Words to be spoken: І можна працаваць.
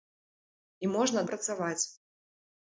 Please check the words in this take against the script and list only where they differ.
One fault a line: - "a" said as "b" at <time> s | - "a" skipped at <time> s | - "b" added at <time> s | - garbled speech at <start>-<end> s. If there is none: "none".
none